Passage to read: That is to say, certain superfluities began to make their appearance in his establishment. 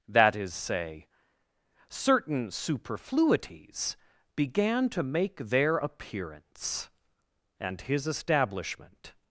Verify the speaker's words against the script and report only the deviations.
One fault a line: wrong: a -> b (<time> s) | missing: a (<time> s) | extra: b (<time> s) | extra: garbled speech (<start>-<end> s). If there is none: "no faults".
missing: to (0.5 s)
wrong: in -> and (7.6 s)